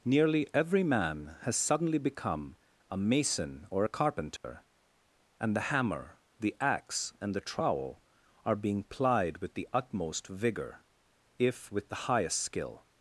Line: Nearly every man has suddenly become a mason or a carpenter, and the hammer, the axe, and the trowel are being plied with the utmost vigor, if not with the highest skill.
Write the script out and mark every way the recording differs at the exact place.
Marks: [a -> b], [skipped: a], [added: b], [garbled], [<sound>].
Nearly every man has suddenly become a mason or a carpenter, [dropout] and the hammer, the axe, and the trowel are being plied with the utmost vigor, if [skipped: not] with the highest skill.